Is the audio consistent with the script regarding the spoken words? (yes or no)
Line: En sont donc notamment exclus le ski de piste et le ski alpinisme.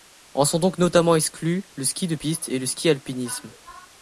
yes